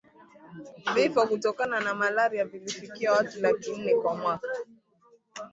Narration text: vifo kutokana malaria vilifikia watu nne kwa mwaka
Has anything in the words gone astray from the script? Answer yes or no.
yes